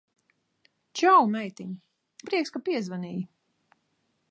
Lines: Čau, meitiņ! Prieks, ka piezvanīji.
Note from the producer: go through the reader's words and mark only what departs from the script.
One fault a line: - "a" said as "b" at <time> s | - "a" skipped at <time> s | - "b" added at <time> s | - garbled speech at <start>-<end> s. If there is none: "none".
none